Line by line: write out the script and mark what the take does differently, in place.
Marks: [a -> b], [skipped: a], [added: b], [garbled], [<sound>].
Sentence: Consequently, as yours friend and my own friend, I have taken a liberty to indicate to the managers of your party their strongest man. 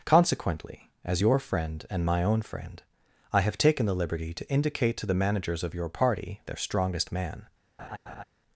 Consequently, as [yours -> your] friend and my own friend, I have taken [a -> the] liberty to indicate to the managers of your party their strongest man. [laugh]